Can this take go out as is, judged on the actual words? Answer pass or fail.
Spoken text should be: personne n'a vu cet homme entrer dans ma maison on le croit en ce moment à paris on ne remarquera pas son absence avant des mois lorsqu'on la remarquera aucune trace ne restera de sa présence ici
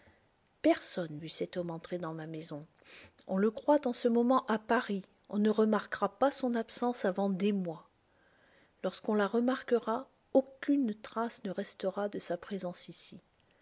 fail